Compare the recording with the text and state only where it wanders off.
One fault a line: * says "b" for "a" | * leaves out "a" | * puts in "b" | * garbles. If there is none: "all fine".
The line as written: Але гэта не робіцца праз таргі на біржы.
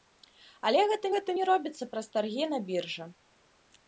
* puts in "гэта"